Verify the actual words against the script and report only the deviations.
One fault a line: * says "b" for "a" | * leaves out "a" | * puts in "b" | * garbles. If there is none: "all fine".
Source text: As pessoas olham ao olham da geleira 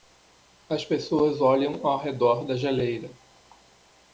* says "redor" for "olham"